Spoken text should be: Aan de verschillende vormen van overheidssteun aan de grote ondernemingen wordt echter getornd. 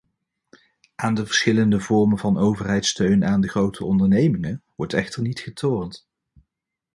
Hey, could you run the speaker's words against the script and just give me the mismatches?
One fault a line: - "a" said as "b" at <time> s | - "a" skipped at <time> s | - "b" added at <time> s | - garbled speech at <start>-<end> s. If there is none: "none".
- "niet" added at 5.2 s